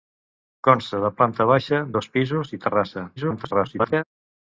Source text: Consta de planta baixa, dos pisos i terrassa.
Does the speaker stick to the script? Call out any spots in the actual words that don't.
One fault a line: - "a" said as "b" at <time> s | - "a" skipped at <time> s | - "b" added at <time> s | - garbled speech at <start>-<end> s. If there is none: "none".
- garbled speech at 3.2-4.0 s